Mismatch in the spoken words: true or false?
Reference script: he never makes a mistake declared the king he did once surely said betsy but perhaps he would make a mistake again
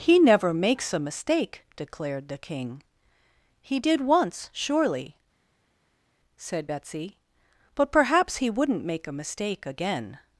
true